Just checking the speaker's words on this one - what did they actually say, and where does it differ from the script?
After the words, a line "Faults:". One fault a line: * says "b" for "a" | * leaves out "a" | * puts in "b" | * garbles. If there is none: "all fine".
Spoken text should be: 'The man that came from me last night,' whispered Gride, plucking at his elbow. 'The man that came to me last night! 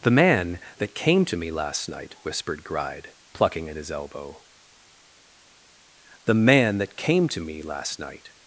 'The man that came to me last night,' whispered Gride, plucking at his elbow. 'The man that came to me last night!
Faults:
* says "to" for "from"